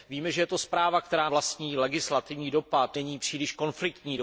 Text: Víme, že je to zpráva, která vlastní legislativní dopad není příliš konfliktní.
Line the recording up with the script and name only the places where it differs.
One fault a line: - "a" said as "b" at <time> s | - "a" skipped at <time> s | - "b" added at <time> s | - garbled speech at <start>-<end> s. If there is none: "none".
none